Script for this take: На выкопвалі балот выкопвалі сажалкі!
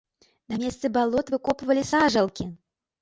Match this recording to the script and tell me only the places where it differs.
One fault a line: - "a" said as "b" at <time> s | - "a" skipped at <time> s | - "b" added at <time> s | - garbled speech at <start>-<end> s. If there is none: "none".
- "выкопвалі" said as "месцы" at 0.6 s